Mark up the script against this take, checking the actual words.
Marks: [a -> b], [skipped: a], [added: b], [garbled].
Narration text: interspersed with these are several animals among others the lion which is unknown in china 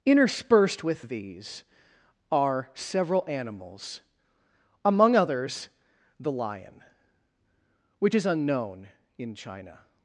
interspersed with these are several animals among others the lion which is unknown in china